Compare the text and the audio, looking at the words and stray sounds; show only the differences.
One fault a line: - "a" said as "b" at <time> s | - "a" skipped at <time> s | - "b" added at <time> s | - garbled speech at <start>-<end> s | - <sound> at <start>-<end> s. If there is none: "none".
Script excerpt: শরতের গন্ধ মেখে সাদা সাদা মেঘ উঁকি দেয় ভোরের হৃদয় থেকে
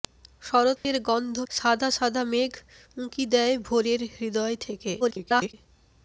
- dropout at 0.8-0.8 s
- "মেখে" skipped at 1.4 s
- garbled speech at 5.0-5.5 s